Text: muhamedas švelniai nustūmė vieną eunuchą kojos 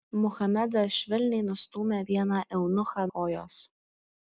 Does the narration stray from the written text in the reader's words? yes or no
no